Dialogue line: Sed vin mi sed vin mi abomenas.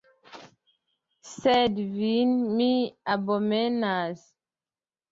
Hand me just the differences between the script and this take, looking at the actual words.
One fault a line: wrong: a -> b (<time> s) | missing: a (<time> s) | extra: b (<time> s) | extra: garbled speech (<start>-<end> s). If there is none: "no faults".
missing: sed vin mi (2.7 s)